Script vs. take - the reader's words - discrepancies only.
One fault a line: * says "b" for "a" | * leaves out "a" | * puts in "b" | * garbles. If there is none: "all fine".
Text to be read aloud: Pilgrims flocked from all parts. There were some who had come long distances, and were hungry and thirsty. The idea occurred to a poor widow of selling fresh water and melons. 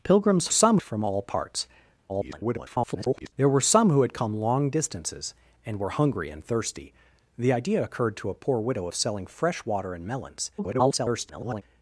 * says "some" for "flocked"
* garbles
* garbles